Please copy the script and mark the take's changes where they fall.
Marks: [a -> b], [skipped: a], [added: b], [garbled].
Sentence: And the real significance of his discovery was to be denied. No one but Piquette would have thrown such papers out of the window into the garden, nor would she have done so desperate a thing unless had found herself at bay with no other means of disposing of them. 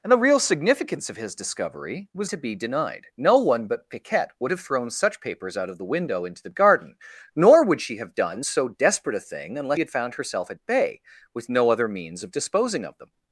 And the real significance of his discovery was to be denied. No one but Piquette would have thrown such papers out of the window into the garden, nor would she have done so desperate a thing unless had found herself at bay with no other means of disposing of them.